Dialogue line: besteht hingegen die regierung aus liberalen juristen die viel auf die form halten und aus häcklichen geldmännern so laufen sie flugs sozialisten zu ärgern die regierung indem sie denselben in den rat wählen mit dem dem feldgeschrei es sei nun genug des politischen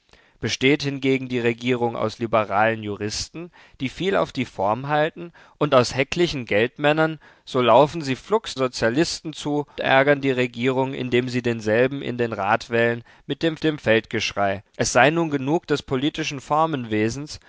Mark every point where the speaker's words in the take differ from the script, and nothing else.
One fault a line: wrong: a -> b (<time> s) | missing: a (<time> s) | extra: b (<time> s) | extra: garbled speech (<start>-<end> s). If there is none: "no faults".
no faults